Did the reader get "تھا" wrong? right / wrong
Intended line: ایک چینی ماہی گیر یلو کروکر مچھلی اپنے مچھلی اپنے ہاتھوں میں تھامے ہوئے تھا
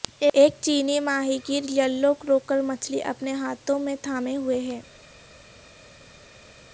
wrong